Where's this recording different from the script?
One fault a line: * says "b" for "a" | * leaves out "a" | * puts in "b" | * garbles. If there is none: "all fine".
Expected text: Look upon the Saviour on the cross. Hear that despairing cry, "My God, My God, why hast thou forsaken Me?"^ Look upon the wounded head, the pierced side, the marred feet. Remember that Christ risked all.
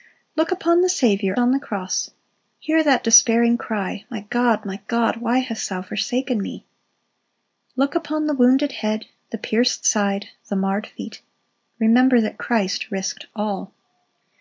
all fine